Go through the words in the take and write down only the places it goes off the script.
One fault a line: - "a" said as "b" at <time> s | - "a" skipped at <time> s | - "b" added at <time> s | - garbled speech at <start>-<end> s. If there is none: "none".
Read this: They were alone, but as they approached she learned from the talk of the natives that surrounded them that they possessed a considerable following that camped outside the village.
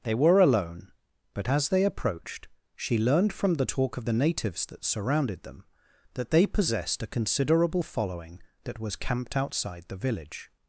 - "was" added at 8.8 s